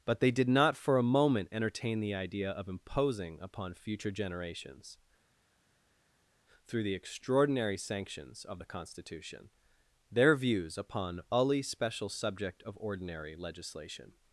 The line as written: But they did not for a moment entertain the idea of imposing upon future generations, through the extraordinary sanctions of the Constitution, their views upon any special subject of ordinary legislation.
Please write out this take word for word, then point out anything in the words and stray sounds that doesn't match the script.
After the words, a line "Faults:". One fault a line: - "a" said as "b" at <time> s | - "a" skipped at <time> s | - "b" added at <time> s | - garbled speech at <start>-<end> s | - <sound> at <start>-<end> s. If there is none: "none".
But they did not for a moment entertain the idea of imposing upon future generations, through the extraordinary sanctions of the Constitution, their views upon ully special subject of ordinary legislation.
Faults:
- "any" said as "ully" at 11.3 s